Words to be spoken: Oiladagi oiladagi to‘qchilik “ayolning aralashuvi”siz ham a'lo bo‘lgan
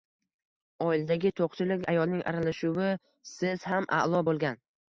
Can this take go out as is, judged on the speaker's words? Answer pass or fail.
fail